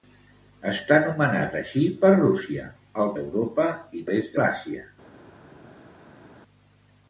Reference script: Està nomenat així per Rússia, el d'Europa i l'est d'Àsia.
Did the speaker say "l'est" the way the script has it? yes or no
yes